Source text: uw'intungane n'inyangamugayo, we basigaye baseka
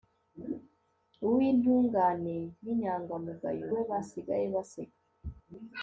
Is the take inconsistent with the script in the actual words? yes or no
no